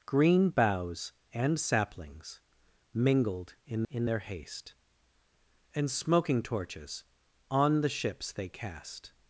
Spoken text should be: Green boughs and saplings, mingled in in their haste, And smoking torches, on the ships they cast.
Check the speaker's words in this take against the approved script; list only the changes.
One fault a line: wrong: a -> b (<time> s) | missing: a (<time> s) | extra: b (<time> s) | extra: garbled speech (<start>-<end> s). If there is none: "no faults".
no faults